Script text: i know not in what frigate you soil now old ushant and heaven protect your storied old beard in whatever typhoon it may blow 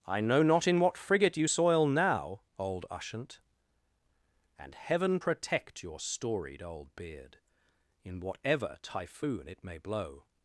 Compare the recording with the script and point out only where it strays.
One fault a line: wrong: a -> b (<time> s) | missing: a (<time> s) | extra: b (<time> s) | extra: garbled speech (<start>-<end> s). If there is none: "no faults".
no faults